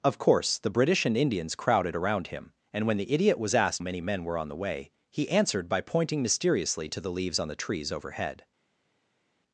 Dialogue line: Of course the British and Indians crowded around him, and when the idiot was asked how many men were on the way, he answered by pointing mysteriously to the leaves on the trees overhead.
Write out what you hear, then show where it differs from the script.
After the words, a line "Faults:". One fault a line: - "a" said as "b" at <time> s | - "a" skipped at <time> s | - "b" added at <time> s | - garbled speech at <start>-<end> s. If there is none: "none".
Of course the British and Indians crowded around him, and when the idiot was asked many men were on the way, he answered by pointing mysteriously to the leaves on the trees overhead.
Faults:
- "how" skipped at 3.8 s